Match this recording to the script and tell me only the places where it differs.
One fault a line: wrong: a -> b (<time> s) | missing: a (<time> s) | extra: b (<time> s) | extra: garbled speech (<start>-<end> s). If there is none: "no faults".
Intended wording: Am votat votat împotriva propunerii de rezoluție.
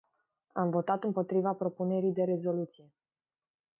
missing: votat (1.0 s)